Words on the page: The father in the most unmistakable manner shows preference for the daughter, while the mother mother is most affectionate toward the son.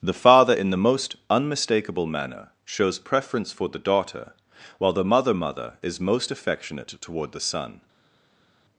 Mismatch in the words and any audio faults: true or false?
false